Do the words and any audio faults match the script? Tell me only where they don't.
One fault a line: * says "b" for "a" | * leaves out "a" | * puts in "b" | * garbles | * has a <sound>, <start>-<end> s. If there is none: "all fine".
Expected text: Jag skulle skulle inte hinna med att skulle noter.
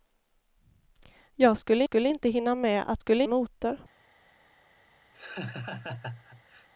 * has a laugh, 5.1-6.7 s